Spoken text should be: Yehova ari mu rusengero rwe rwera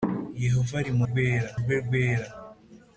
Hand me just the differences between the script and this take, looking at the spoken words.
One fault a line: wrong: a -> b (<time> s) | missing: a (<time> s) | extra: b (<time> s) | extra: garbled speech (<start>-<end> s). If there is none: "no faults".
wrong: rusengero -> rwera (1.1 s)